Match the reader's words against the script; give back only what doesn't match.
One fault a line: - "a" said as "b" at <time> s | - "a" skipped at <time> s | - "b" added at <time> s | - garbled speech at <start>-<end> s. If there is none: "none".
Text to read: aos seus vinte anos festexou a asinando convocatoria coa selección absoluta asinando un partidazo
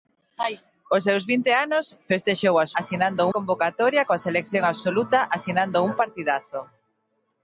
none